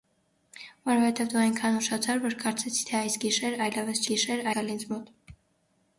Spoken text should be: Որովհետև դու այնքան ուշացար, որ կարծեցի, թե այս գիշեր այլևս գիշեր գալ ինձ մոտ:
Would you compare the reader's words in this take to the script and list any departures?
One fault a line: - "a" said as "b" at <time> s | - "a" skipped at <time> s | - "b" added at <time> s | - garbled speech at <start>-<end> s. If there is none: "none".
none